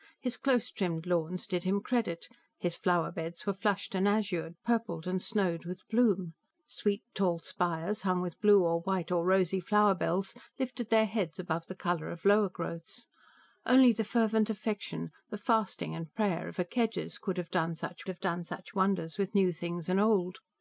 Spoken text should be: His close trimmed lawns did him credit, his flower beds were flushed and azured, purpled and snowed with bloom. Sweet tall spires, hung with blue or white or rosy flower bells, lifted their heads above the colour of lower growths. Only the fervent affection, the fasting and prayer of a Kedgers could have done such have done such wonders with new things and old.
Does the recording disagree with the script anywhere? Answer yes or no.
no